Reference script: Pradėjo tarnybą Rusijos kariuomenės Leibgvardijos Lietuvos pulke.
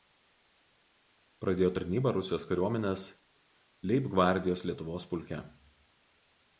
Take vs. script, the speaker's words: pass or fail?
pass